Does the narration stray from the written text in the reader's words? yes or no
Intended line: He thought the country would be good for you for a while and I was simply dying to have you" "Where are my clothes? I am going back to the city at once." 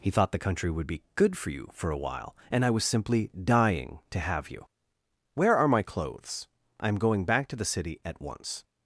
no